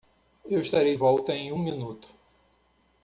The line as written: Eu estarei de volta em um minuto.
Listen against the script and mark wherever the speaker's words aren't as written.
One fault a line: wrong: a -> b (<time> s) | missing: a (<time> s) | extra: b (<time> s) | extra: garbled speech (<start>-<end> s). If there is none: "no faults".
missing: de (0.9 s)